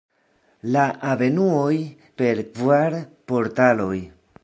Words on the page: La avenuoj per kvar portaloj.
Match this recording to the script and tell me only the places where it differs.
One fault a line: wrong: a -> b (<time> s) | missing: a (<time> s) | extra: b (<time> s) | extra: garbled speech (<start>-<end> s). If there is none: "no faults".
no faults